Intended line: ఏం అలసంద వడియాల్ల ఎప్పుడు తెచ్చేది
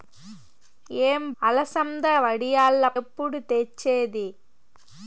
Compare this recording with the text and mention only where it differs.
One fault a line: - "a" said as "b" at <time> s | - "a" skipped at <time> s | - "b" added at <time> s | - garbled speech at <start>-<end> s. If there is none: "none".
none